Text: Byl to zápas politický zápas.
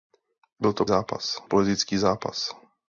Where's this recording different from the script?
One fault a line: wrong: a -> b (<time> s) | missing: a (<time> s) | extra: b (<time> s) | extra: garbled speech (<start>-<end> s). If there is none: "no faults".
no faults